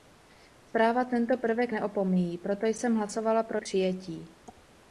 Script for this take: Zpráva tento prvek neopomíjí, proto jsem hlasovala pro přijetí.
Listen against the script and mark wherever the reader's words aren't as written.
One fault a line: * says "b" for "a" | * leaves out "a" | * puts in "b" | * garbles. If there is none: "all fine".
all fine